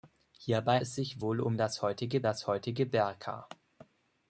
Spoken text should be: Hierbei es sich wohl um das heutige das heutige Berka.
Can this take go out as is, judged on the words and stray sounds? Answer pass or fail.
pass